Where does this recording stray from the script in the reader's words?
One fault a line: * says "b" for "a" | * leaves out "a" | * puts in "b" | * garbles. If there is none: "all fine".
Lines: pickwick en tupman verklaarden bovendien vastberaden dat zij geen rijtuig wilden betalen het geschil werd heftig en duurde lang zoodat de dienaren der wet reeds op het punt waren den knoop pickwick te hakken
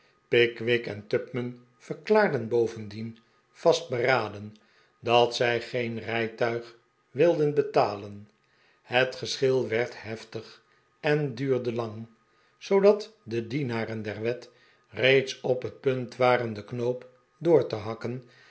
* says "door" for "pickwick"